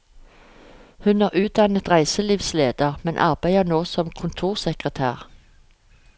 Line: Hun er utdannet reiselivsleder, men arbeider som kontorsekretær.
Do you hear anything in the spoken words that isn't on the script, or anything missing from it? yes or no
yes